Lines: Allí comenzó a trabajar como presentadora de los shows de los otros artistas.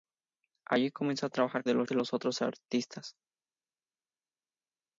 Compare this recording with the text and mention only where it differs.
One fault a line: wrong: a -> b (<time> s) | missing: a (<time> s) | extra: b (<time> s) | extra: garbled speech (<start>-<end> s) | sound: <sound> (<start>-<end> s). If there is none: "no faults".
missing: como presentadora (1.6 s)
missing: shows (1.9 s)